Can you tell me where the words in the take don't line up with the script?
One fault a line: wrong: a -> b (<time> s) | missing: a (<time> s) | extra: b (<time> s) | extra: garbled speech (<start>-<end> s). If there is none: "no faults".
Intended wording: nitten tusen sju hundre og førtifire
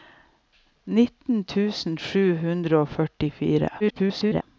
extra: garbled speech (3.8-4.4 s)